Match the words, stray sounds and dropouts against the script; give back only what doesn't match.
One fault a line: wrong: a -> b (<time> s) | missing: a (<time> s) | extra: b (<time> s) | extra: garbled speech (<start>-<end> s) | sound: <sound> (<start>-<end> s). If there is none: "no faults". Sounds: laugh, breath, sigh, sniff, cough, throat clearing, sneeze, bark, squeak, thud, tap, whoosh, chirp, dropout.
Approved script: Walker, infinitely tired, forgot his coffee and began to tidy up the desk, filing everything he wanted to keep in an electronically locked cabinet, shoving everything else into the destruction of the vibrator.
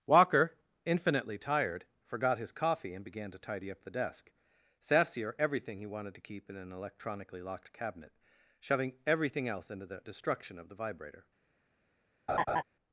wrong: filing -> sassier (4.8 s)
sound: laugh (12.3-12.6 s)